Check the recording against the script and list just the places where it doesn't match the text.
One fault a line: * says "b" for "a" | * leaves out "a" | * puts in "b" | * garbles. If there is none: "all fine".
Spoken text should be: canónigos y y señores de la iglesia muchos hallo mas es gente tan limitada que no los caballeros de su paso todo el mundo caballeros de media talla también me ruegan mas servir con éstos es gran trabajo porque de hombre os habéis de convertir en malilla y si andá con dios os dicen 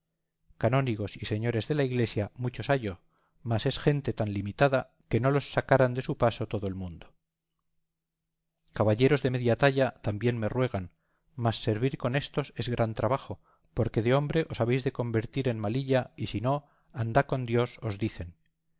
* leaves out "y"
* says "sacaran" for "caballeros"
* puts in "no"